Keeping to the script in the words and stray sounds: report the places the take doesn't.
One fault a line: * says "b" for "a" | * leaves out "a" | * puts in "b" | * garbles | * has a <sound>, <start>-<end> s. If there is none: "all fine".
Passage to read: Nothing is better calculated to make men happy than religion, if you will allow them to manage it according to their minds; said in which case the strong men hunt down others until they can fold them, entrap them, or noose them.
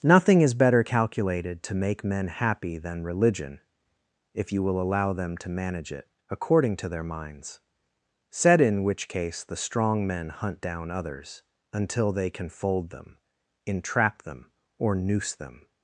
all fine